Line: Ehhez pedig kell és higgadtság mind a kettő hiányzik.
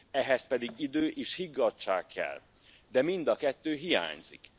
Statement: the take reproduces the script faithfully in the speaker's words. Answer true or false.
false